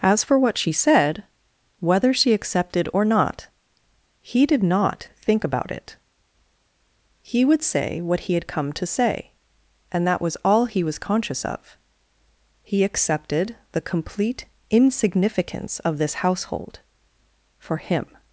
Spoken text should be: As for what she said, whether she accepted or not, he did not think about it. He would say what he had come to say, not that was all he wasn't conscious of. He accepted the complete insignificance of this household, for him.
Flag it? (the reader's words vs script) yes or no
yes